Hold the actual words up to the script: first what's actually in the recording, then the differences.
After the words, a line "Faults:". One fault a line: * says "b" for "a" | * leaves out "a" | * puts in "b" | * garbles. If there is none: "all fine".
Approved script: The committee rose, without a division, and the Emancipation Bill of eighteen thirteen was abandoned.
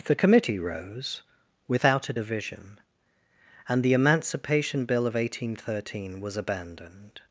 The committee rose, without a division, and the Emancipation Bill of eighteen thirteen was abandoned.
Faults:
all fine